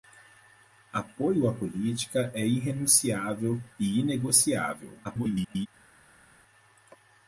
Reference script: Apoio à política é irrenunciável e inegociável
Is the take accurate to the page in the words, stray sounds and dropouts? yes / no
no